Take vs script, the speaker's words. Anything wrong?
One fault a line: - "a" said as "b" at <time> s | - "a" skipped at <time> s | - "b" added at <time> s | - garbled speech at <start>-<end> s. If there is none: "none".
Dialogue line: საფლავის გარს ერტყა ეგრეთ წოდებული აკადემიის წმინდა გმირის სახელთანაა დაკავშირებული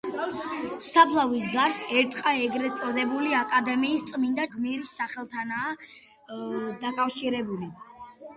none